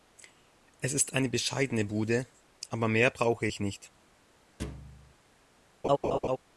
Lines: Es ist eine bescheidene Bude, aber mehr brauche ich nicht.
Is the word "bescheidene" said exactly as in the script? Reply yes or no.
yes